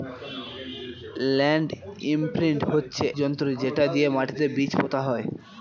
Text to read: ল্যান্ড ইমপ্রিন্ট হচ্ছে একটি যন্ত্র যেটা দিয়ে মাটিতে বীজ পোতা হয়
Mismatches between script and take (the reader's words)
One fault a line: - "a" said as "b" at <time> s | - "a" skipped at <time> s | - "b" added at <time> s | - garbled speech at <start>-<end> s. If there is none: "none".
- "একটি" skipped at 3.0 s